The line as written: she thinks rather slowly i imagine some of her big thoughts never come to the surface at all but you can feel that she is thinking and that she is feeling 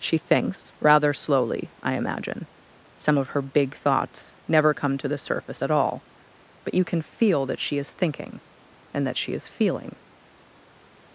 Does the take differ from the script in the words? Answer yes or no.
no